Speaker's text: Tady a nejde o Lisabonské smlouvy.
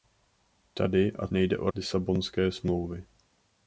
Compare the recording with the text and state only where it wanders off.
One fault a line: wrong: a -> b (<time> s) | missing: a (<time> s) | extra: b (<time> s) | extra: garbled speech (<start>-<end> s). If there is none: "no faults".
no faults